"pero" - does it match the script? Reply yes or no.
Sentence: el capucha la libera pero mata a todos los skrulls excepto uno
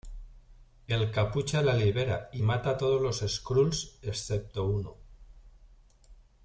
no